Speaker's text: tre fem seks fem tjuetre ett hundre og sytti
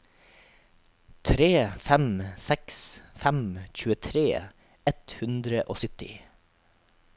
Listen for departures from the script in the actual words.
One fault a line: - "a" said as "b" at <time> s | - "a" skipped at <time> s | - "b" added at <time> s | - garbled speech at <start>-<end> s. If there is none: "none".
none